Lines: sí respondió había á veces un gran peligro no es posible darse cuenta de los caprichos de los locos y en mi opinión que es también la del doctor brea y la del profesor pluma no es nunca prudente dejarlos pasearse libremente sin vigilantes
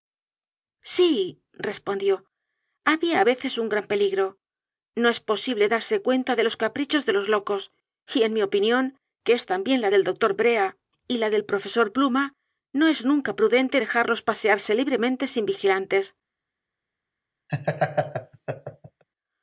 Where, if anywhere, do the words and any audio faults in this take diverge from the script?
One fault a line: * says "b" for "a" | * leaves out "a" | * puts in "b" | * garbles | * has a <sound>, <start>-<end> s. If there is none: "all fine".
* has a laugh, 17.5-19.0 s